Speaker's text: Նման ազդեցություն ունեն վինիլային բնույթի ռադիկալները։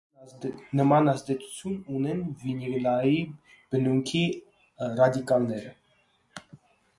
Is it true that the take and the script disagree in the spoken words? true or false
false